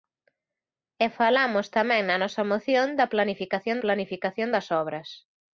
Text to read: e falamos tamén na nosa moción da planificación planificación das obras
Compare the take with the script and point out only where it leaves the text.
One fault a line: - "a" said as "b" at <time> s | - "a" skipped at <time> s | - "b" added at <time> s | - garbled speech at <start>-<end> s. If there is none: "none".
none